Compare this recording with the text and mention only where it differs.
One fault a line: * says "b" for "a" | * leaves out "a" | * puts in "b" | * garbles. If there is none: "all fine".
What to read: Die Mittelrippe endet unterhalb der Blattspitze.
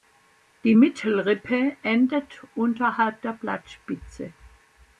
all fine